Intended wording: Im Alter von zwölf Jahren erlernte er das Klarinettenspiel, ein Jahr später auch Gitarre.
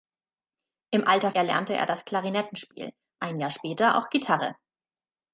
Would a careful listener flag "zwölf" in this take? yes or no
yes